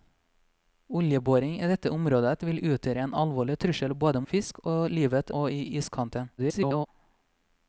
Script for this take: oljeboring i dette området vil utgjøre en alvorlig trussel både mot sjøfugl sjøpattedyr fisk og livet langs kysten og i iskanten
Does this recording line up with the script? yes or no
no